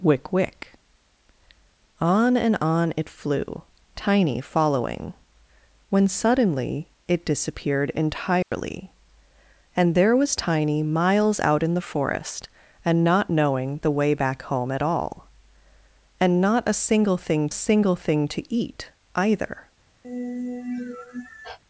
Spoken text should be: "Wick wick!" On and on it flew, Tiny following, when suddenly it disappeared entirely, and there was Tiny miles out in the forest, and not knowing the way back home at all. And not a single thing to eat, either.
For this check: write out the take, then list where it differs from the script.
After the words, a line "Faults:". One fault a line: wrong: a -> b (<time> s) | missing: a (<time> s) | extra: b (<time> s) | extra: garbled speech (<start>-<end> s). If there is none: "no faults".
"Wick wick!" On and on it flew, Tiny following, when suddenly it disappeared entirely, and there was Tiny miles out in the forest, and not knowing the way back home at all. And not a single thing single thing to eat, either.
Faults:
extra: single thing (17.5 s)